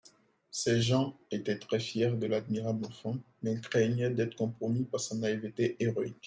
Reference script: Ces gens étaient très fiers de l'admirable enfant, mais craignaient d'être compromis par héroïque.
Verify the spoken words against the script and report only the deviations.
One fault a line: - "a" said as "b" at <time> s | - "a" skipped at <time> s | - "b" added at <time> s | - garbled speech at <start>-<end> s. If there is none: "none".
- "sa naïveté" added at 5.0 s